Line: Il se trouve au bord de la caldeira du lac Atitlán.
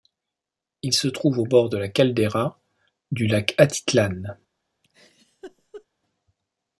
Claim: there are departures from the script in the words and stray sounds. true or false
true